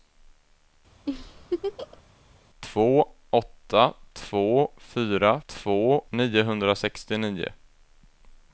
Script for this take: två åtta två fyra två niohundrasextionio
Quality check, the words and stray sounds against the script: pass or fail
fail